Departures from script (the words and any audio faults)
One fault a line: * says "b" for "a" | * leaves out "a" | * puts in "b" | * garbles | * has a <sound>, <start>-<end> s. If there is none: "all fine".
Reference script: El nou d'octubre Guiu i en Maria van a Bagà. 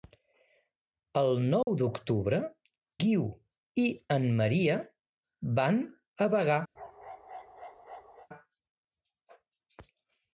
* has a dropout, 1.6-1.7 s
* has a bark, 6.7-8.3 s